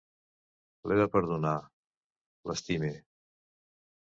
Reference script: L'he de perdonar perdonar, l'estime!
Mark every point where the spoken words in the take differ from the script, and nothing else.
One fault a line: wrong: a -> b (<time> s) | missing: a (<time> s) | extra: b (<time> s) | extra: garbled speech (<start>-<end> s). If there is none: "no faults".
missing: perdonar (1.5 s)